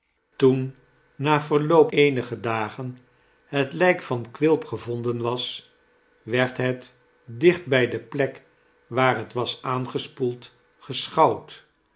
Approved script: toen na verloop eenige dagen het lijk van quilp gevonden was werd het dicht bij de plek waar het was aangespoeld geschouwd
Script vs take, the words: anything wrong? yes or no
no